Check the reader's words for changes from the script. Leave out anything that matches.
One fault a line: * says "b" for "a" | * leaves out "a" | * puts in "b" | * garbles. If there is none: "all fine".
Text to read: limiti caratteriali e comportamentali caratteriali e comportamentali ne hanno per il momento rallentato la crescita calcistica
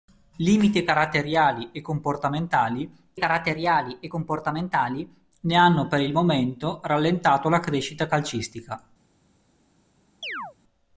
all fine